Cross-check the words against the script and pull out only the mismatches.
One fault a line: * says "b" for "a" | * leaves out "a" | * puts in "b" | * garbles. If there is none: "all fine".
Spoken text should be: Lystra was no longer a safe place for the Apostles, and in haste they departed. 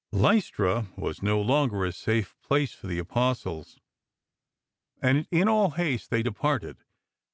* puts in "all"